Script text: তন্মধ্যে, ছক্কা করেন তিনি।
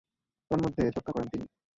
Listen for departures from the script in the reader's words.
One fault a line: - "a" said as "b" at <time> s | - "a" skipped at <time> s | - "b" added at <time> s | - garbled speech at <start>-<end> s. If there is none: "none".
none